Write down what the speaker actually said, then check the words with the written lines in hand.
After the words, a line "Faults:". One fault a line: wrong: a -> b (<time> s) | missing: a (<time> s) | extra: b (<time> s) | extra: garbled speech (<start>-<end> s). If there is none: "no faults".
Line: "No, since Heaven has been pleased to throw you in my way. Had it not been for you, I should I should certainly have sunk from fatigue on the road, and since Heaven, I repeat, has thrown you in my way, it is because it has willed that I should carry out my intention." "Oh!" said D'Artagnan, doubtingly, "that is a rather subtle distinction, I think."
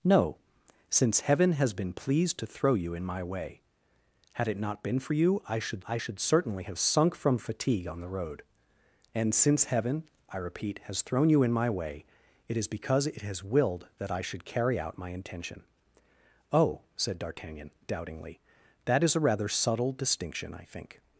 "No, since Heaven has been pleased to throw you in my way. Had it not been for you, I should I should certainly have sunk from fatigue on the road, and since Heaven, I repeat, has thrown you in my way, it is because it has willed that I should carry out my intention." "Oh!" said D'Artagnan, doubtingly, "that is a rather subtle distinction, I think."
Faults:
no faults